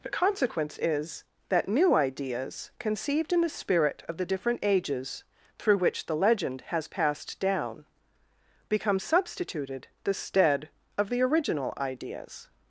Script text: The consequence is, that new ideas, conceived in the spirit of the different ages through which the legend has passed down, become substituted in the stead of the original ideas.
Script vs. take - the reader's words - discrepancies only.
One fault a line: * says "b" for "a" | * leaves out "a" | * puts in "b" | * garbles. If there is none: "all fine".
* leaves out "in"